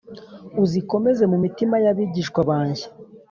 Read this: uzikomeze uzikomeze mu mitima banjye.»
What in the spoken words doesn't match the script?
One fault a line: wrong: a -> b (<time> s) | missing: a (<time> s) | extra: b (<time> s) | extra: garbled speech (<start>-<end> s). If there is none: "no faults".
missing: uzikomeze (1.2 s)
extra: y'abigishwa (1.8 s)